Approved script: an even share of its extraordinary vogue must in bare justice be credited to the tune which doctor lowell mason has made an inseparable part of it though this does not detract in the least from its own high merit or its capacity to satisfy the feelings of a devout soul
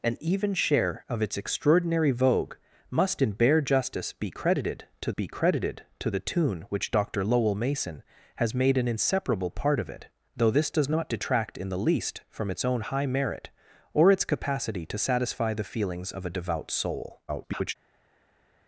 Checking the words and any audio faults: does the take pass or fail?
fail